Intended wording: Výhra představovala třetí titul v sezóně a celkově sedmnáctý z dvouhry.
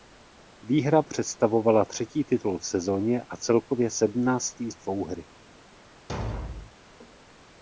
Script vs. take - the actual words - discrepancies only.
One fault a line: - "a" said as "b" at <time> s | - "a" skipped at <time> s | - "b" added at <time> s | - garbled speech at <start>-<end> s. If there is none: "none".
none